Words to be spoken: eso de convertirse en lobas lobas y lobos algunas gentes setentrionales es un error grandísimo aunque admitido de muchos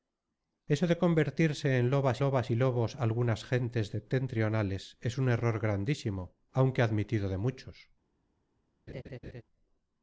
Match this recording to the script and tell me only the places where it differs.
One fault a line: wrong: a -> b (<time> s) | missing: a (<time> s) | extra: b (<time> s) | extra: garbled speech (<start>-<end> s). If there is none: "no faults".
no faults